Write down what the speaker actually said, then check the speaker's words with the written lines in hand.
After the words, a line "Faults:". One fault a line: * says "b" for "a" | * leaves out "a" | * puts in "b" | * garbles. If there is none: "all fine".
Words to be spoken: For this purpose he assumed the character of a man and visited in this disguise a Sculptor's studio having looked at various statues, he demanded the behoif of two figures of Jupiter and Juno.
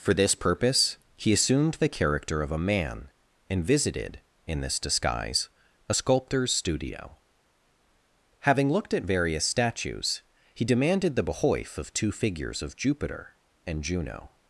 For this purpose he assumed the character of a man and visited in this disguise a Sculptor's studio having looked at various statues, he demanded the behoif of two figures of Jupiter and Juno.
Faults:
all fine